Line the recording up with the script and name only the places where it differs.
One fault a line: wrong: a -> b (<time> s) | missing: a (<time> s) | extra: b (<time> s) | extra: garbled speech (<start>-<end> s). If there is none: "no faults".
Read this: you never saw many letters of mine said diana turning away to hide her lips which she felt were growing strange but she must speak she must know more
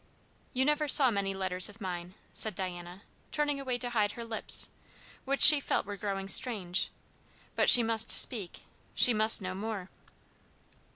no faults